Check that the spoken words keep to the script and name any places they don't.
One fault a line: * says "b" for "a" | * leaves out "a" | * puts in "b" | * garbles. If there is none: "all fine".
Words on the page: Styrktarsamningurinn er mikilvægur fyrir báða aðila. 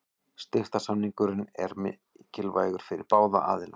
all fine